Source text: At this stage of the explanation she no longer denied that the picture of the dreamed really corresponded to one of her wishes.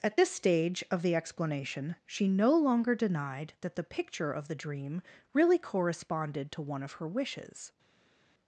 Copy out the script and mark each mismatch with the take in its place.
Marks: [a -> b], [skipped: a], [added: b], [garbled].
At this stage of the explanation she no longer denied that the picture of the [dreamed -> dream] really corresponded to one of her wishes.